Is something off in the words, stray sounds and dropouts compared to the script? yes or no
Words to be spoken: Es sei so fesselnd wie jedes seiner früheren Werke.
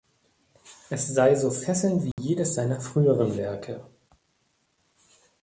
yes